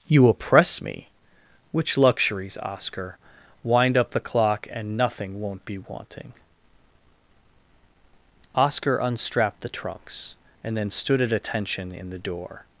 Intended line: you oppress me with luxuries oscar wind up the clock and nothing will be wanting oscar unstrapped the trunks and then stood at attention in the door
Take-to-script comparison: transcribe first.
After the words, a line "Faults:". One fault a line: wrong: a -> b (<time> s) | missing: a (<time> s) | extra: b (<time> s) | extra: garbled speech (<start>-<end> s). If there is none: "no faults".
you oppress me which luxuries oscar wind up the clock and nothing won't be wanting oscar unstrapped the trunks and then stood at attention in the door
Faults:
wrong: with -> which (1.7 s)
wrong: will -> won't (5.4 s)